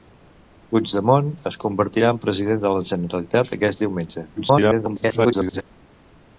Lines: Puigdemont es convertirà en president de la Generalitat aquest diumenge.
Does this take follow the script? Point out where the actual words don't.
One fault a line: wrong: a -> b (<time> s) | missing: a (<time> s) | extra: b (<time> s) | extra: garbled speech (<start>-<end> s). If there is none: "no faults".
extra: garbled speech (4.4-5.6 s)